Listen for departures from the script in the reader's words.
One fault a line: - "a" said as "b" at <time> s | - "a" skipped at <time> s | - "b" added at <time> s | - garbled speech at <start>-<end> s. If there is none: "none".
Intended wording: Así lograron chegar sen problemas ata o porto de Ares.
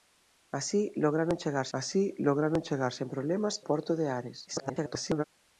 - "así lograron chegar" added at 1.8 s
- "ata" skipped at 3.6 s
- garbled speech at 4.5-5.2 s